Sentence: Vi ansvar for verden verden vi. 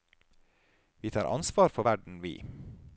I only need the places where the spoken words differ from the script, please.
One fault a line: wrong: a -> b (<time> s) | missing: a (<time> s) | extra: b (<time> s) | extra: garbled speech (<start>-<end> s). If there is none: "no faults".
extra: tar (1.1 s)
missing: verden (2.2 s)